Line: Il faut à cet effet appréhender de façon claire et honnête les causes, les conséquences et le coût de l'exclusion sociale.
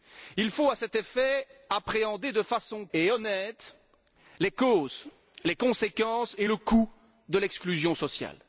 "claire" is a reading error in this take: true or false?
true